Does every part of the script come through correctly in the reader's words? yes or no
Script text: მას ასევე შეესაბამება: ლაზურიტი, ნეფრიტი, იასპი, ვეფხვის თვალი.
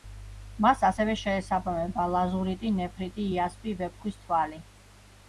yes